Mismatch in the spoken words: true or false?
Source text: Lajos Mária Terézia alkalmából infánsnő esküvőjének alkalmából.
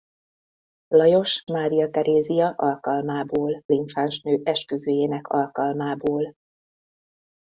false